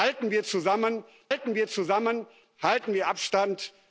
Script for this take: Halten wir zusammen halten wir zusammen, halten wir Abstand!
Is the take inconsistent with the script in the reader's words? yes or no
no